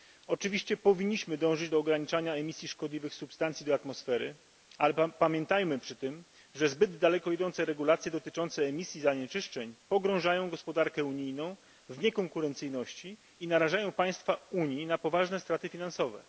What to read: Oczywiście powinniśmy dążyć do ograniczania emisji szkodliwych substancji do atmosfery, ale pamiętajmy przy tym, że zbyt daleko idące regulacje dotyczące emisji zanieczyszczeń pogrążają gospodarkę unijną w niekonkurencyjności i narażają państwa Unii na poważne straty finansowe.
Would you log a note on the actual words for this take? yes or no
no